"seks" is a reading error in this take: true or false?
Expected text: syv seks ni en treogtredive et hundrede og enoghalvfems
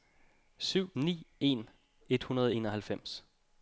true